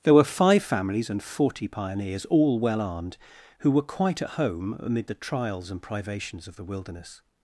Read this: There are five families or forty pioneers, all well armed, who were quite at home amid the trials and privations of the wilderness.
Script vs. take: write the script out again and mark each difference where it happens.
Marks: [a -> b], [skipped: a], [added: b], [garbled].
There [are -> were] five families [or -> and] forty pioneers, all well armed, who were quite at home amid the trials and privations of the wilderness.